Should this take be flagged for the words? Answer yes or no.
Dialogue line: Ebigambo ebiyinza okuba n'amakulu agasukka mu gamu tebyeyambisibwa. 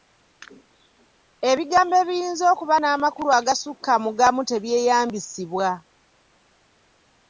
no